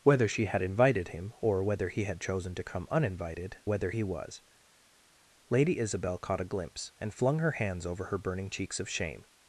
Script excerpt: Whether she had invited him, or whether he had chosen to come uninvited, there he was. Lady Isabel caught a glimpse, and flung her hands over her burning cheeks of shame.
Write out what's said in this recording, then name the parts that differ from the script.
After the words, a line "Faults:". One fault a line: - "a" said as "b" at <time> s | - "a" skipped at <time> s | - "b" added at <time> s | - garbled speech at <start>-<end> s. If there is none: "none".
Whether she had invited him, or whether he had chosen to come uninvited, whether he was. Lady Isabel caught a glimpse, and flung her hands over her burning cheeks of shame.
Faults:
- "there" said as "whether" at 3.6 s